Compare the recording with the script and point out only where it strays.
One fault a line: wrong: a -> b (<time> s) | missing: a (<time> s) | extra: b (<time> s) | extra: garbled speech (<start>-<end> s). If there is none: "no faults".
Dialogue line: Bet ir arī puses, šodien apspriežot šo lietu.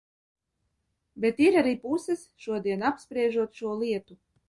no faults